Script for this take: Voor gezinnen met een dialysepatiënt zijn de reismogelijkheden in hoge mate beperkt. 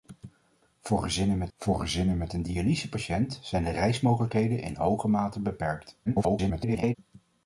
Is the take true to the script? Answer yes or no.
no